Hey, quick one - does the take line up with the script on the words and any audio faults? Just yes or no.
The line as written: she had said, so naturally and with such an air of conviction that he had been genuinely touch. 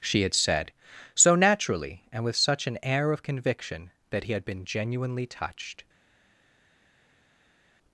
no